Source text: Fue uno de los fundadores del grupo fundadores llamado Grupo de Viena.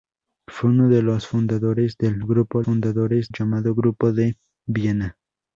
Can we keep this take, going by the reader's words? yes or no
yes